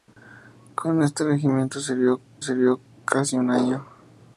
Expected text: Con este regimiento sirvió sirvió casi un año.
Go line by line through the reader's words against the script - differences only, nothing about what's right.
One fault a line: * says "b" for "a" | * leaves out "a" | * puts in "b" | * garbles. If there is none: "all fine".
all fine